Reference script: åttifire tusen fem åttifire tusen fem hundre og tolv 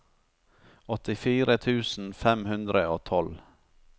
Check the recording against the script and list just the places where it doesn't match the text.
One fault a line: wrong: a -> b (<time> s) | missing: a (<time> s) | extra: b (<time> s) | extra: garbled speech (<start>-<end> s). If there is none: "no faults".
missing: åttifire tusen fem (2.5 s)